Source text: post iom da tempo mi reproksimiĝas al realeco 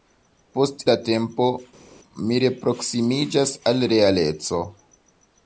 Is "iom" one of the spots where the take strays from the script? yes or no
yes